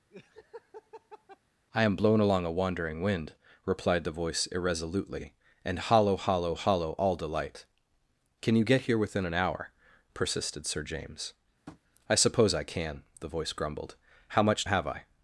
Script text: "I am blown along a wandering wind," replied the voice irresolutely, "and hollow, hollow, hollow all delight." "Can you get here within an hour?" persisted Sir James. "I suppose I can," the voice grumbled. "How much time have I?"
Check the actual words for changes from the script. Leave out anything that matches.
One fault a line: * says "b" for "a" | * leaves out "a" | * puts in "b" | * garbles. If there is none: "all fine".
* leaves out "time"